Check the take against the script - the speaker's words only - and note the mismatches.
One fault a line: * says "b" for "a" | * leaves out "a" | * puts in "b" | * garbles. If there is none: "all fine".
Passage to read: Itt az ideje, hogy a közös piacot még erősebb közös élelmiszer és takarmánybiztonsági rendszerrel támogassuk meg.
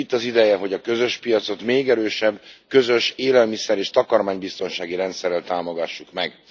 all fine